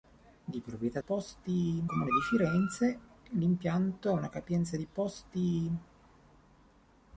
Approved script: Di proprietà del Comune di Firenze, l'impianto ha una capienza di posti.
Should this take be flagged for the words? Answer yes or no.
yes